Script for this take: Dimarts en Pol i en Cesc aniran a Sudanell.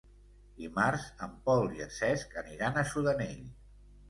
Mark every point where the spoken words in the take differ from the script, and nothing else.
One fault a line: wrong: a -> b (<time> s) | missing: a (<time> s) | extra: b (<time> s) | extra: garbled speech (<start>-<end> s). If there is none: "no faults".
no faults